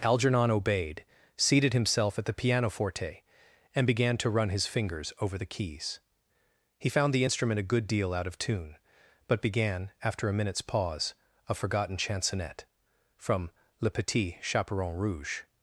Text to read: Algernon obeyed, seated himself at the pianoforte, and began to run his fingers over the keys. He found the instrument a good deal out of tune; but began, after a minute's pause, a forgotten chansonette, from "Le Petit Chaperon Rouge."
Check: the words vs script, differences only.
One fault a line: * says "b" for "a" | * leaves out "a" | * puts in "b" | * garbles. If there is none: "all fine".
all fine